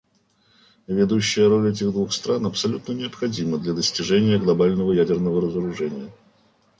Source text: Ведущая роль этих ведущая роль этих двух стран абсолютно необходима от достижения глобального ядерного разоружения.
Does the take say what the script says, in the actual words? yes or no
no